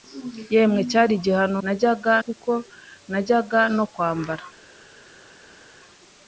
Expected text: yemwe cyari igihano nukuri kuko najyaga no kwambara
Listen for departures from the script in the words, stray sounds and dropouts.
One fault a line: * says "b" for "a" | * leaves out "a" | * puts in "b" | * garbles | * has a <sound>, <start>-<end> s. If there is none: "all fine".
* says "najyaga" for "nukuri"